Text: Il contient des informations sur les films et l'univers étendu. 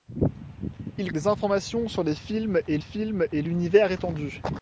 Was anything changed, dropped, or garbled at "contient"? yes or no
yes